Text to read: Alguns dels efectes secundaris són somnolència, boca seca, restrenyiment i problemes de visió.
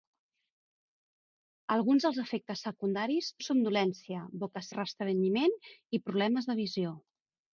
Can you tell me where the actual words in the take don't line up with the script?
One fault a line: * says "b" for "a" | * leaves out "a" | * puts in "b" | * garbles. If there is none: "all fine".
* leaves out "són"
* leaves out "seca"